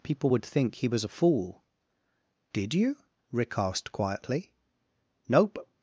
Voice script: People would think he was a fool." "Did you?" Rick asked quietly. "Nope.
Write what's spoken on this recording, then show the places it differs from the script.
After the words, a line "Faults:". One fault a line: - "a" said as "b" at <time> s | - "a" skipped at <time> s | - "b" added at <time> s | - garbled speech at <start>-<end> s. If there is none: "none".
People would think he was a fool." "Did you?" Rick asked quietly. "Nope.
Faults:
none